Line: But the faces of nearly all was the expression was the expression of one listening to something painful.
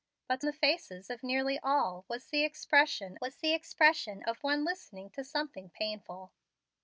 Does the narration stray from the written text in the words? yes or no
no